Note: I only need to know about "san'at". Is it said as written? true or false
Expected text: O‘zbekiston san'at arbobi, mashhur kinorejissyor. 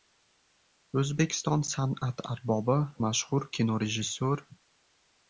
true